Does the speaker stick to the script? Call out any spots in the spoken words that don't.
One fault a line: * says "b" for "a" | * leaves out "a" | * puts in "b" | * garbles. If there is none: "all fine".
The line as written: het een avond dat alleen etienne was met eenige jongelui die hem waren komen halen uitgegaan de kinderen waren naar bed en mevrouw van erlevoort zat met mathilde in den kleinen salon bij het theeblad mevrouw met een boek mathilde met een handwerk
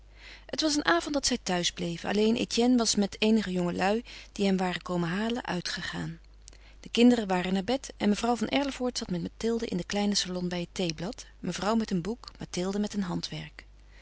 * puts in "was"
* puts in "zij thuis bleven"